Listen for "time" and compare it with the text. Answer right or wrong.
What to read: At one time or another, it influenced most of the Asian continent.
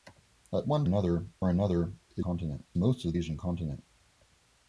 wrong